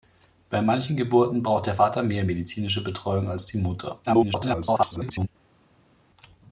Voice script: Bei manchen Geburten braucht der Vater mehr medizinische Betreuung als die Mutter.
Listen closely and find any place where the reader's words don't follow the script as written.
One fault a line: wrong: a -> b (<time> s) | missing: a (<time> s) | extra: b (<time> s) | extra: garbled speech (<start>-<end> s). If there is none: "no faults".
extra: garbled speech (4.1-5.3 s)